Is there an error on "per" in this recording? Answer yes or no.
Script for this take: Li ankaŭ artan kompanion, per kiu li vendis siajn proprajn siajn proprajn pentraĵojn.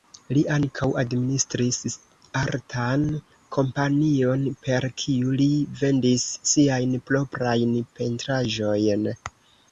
no